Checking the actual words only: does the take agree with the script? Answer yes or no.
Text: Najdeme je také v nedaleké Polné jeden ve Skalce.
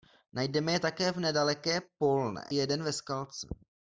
yes